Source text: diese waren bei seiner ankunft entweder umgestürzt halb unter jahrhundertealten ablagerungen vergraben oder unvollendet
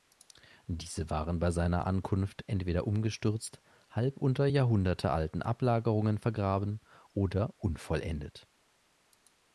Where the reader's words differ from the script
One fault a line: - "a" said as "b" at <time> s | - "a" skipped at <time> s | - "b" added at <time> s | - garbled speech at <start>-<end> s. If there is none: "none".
none